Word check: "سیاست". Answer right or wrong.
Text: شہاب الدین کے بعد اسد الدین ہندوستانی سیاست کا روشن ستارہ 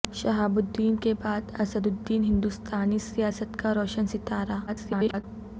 right